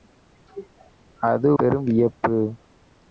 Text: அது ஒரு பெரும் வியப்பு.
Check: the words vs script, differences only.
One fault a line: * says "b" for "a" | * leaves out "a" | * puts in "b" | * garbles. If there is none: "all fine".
* leaves out "ஒரு"